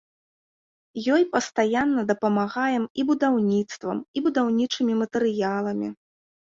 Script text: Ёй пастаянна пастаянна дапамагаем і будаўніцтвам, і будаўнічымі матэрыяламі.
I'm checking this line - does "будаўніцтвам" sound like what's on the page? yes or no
yes